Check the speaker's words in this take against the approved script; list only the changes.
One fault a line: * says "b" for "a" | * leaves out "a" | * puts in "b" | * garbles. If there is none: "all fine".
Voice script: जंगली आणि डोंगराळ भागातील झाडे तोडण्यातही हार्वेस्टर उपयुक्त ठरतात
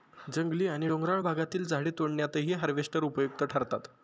all fine